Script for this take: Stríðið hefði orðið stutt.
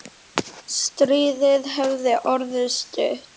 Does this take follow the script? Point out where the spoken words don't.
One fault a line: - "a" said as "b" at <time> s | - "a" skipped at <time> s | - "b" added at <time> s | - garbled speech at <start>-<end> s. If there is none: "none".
none